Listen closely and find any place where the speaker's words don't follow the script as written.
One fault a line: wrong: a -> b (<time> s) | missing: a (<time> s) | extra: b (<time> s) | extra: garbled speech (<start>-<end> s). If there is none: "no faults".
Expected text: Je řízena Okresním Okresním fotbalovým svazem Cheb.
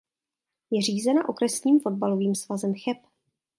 missing: Okresním (1.8 s)